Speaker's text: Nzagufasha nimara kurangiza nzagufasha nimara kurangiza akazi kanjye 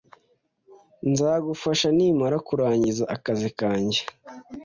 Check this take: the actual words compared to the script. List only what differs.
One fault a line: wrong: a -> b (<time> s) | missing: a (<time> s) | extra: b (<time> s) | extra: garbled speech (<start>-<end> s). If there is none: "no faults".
missing: nzagufasha nimara kurangiza (3.0 s)